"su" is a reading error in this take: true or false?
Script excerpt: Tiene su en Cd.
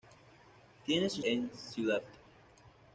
false